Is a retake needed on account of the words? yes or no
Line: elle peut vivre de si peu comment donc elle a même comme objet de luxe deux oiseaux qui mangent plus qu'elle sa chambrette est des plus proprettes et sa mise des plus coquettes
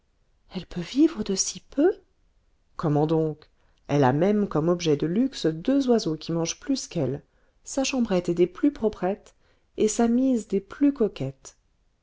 no